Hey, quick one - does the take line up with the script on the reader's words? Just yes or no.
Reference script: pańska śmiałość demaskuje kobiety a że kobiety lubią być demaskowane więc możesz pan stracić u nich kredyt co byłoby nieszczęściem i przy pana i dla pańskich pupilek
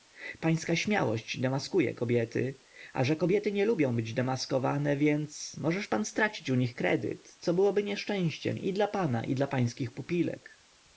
no